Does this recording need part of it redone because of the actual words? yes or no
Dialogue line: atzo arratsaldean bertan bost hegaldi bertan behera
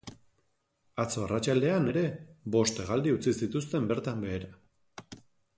yes